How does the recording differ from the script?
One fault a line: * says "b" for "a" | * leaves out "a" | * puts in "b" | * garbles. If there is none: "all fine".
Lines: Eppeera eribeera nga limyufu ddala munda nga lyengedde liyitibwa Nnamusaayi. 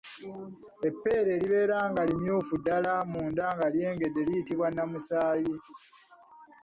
all fine